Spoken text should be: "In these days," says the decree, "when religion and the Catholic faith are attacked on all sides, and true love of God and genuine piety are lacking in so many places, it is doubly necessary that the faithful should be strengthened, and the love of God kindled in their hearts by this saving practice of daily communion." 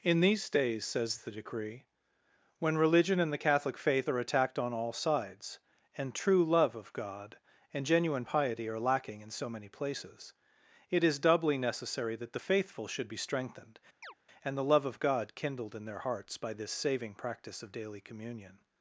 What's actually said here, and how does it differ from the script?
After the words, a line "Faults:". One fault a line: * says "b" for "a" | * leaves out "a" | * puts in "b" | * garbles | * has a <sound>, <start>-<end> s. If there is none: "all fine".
"In these days," says the decree, "when religion and the Catholic faith are attacked on all sides, and true love of God and genuine piety are lacking in so many places, it is doubly necessary that the faithful should be strengthened, and the love of God kindled in their hearts by this saving practice of daily communion."
Faults:
* has a chirp, 14.0-14.1 s